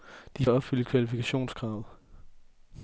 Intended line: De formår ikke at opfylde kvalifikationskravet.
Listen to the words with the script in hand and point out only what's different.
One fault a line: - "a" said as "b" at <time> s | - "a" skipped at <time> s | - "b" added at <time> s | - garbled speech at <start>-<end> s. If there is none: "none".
- "formår ikke" skipped at 0.5 s